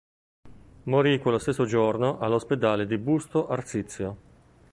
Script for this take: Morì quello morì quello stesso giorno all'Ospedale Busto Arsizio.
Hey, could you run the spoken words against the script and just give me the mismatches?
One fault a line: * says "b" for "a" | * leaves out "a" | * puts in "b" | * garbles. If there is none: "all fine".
* leaves out "morì quello"
* puts in "di"